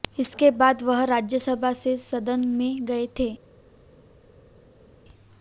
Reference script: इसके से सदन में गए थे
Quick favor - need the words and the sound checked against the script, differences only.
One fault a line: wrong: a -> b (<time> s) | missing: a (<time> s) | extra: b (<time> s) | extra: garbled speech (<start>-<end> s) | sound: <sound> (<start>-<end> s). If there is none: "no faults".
extra: बाद वह राज्यसभा (0.5 s)